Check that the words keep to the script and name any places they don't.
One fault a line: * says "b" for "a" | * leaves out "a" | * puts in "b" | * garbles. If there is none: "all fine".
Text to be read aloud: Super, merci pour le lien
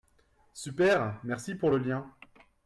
all fine